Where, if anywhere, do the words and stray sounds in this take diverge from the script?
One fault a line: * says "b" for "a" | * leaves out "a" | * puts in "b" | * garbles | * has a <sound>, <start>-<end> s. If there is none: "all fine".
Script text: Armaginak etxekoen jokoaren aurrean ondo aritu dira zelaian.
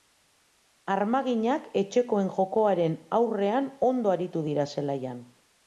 all fine